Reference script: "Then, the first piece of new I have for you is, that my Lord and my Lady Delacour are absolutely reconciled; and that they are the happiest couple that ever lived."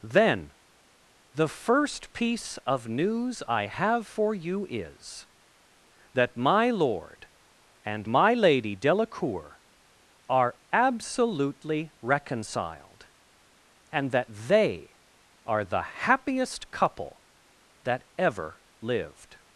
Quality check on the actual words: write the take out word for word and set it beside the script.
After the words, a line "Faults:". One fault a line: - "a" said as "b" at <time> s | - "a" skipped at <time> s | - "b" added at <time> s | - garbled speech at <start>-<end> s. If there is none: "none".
"Then, the first piece of news I have for you is, that my Lord and my Lady Delacour are absolutely reconciled; and that they are the happiest couple that ever lived."
Faults:
- "new" said as "news" at 2.9 s